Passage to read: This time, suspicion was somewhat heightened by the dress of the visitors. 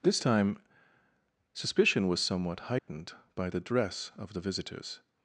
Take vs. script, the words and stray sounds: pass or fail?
fail